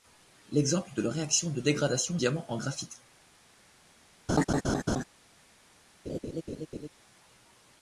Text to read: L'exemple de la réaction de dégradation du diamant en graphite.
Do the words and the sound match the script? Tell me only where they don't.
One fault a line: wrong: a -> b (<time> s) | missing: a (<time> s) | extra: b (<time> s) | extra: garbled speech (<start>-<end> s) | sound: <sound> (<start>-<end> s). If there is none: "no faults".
missing: du (2.2 s)
sound: laugh (4.3-5.0 s)
sound: laugh (6.1-6.9 s)